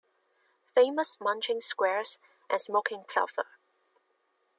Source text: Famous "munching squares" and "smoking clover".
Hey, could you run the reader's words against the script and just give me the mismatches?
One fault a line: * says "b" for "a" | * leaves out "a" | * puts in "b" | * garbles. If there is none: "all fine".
all fine